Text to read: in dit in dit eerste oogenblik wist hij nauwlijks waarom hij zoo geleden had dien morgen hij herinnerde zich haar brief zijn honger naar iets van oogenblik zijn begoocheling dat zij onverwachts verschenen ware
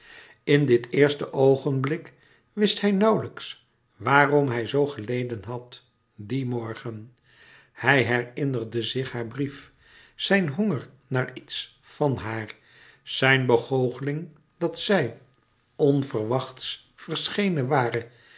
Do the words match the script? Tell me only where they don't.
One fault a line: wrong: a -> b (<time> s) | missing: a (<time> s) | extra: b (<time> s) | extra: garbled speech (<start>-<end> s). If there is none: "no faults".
missing: in dit (0.9 s)
wrong: oogenblik -> haar (12.2 s)